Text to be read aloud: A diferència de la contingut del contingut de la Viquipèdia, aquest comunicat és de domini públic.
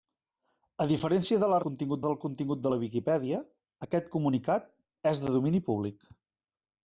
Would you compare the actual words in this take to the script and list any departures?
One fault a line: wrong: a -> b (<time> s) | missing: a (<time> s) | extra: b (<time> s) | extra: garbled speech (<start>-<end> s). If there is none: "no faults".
no faults